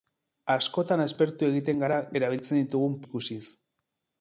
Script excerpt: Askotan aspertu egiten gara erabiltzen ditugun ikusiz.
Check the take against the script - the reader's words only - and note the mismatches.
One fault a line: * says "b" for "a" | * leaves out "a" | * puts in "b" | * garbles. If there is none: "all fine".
all fine